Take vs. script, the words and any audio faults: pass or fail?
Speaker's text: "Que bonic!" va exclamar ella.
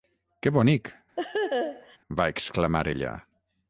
fail